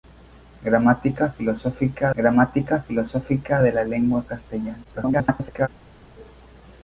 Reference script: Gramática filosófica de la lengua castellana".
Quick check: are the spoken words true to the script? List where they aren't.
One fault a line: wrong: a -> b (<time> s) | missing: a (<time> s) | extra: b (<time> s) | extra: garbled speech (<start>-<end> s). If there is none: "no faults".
extra: gramática filosófica (2.2 s)
extra: garbled speech (4.8-5.7 s)